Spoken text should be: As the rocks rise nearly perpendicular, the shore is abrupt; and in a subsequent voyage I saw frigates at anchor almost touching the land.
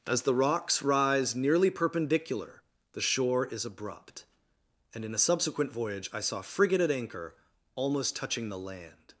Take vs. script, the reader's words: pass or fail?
fail